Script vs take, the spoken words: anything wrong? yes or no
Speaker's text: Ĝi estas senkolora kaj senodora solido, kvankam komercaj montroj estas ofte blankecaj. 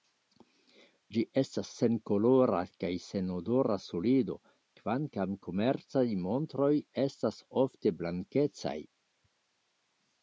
no